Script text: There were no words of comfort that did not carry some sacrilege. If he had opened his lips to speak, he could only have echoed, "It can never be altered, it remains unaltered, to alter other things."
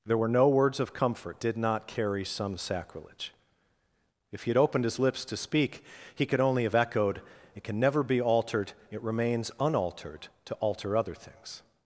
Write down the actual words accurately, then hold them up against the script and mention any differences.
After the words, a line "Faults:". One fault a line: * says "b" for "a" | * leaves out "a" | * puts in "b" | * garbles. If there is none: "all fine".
There were no words of comfort did not carry some sacrilege. If he had opened his lips to speak, he could only have echoed, "It can never be altered, it remains unaltered, to alter other things."
Faults:
* leaves out "that"